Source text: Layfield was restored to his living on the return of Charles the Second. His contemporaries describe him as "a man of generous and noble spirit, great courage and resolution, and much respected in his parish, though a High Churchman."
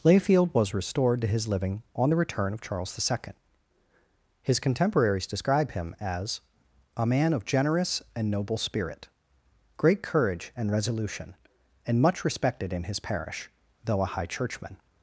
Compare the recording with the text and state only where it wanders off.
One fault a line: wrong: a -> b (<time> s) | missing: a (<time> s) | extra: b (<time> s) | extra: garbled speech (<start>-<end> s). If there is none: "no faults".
no faults